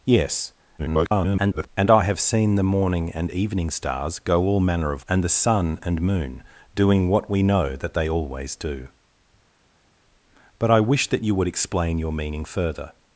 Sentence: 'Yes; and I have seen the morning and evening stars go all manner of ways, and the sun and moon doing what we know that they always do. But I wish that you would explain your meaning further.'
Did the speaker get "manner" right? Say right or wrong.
right